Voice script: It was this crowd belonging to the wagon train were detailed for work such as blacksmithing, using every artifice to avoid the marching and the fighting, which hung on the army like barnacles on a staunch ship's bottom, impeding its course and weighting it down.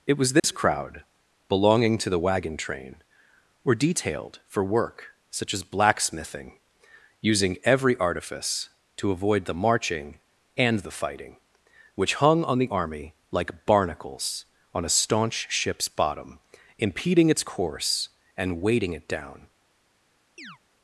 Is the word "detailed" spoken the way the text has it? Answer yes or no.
yes